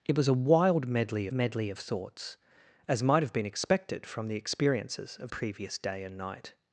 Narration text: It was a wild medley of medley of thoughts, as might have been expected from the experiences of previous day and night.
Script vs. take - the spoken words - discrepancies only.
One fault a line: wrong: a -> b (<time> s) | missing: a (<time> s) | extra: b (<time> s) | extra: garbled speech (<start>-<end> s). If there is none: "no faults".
no faults